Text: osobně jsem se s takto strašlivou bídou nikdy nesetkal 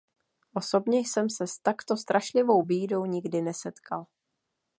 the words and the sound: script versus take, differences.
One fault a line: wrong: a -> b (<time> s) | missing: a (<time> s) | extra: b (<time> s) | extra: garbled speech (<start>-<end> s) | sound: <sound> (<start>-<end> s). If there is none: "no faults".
no faults